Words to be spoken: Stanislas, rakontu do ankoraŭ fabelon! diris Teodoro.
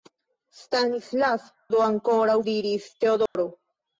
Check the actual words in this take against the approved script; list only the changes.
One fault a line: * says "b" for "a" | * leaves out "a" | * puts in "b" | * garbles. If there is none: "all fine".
* leaves out "rakontu"
* leaves out "fabelon"